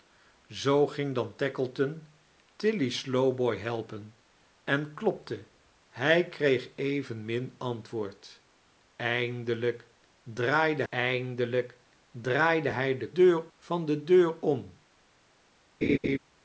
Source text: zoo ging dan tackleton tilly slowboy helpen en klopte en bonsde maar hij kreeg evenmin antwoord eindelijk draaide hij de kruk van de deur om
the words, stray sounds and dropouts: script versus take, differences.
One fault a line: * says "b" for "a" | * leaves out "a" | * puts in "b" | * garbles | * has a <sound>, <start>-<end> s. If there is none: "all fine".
* leaves out "en bonsde maar"
* puts in "eindelijk draaide"
* says "deur" for "kruk"
* has a laugh, 15.8-16.2 s